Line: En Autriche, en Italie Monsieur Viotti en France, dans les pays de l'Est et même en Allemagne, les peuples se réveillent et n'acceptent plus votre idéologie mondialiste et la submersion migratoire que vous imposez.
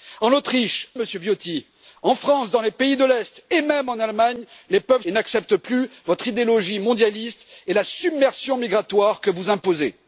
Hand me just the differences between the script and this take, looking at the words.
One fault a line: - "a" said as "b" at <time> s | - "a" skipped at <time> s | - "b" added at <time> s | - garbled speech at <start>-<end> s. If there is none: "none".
- "en Italie" skipped at 0.9 s
- "se réveillent" skipped at 5.0 s